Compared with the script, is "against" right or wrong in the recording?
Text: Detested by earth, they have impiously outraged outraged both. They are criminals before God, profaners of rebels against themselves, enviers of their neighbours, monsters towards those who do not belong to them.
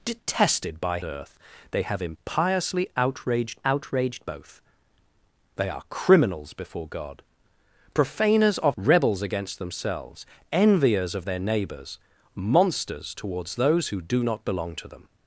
right